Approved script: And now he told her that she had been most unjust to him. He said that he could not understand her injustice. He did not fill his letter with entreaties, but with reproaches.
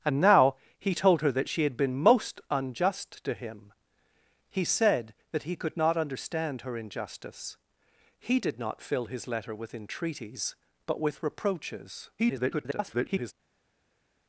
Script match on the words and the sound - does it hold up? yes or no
no